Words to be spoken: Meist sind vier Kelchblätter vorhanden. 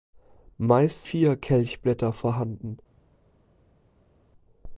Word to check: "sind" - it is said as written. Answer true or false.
false